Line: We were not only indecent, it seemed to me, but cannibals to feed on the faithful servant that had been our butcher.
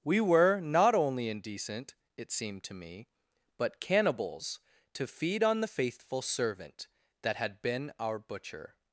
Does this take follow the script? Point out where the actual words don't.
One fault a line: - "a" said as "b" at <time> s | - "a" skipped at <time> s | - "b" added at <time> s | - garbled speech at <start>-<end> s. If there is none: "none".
none